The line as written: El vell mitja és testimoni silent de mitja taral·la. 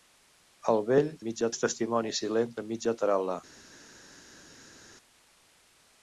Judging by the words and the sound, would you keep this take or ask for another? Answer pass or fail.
pass